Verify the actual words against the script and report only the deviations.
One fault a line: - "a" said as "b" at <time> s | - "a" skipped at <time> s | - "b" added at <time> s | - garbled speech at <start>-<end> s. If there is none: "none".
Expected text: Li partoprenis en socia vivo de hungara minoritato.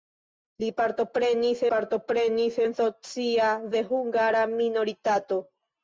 - "partoprenis" added at 1.7 s
- "vivo" skipped at 3.5 s